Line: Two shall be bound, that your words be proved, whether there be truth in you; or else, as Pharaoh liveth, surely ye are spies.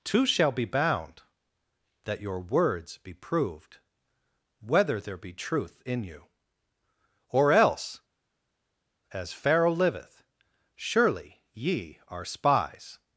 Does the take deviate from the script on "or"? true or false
false